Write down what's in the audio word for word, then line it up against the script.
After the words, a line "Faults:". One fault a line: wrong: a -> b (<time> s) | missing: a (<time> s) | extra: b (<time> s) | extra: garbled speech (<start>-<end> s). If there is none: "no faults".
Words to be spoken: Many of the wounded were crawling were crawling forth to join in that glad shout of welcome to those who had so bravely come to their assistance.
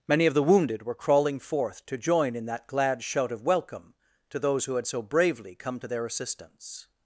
Many of the wounded were crawling forth to join in that glad shout of welcome to those who had so bravely come to their assistance.
Faults:
missing: were crawling (1.4 s)